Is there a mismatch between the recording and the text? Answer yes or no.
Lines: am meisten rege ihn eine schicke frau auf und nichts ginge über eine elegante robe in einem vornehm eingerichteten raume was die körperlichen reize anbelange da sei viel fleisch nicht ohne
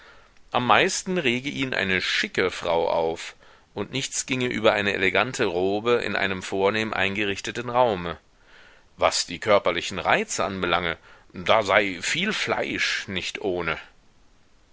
no